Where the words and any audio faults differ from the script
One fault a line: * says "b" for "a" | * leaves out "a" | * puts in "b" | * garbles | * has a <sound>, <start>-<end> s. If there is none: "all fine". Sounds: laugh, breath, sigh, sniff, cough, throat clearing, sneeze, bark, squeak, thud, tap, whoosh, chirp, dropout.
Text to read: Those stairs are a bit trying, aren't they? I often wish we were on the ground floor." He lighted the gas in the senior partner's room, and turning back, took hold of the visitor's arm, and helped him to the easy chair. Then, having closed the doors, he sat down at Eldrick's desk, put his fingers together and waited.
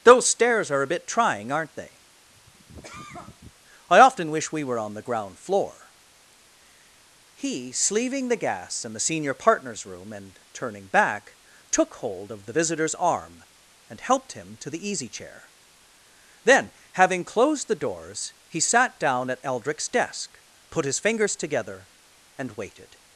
* has a cough, 2.3-3.6 s
* says "sleeving" for "lighted"